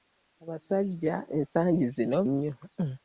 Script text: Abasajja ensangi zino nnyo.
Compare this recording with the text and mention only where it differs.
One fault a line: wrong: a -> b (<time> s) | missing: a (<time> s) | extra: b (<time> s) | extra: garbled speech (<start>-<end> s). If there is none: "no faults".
no faults